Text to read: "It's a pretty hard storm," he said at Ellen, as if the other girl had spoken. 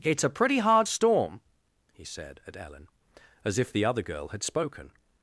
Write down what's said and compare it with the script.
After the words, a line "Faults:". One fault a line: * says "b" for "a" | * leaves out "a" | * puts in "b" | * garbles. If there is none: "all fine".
"It's a pretty hard storm," he said at Ellen, as if the other girl had spoken.
Faults:
all fine